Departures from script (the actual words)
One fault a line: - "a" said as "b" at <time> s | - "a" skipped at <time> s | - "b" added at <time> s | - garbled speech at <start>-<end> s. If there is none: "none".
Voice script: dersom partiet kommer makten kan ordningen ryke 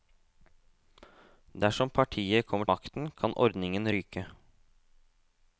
none